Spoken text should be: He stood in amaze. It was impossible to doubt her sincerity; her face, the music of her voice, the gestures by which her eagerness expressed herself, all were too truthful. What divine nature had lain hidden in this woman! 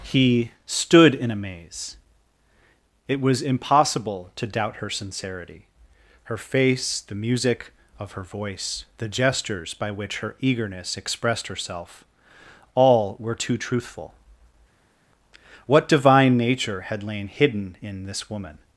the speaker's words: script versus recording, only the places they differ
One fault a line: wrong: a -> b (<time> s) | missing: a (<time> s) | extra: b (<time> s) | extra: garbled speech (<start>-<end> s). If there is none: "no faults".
no faults